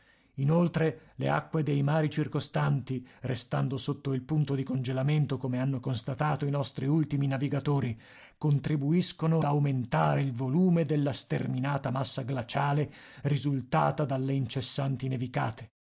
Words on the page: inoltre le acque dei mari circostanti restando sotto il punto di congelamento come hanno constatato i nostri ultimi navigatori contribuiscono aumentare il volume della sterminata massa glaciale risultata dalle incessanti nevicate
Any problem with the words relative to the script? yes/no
no